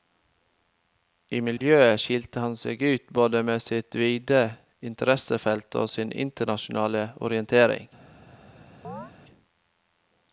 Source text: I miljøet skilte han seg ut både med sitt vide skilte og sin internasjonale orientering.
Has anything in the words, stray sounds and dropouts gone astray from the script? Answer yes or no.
yes